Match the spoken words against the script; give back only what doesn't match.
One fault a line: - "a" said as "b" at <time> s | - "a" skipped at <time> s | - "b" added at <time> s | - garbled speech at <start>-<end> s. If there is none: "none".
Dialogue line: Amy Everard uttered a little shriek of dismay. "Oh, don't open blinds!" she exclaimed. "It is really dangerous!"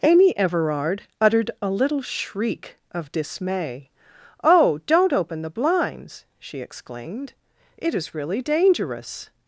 - "the" added at 5.4 s